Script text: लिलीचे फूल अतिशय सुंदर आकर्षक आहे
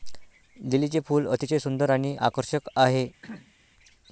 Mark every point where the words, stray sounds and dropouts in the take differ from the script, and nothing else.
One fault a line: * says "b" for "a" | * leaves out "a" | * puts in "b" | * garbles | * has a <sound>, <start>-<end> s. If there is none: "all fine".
* puts in "आणि"
* has a throat clearing, 3.2-3.5 s